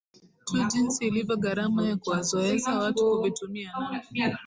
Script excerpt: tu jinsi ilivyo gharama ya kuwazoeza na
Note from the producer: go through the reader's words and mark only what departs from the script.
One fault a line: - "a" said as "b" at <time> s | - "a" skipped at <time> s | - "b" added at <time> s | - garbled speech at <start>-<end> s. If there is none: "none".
- "watu kuvitumia" added at 2.8 s